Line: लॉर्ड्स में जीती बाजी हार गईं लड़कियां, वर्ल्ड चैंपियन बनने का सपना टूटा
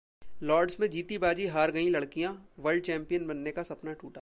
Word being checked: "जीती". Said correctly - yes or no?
yes